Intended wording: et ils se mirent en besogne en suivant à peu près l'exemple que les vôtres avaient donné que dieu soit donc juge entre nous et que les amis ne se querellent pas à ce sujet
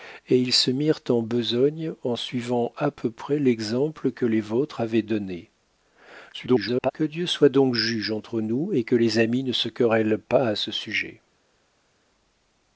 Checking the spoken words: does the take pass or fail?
fail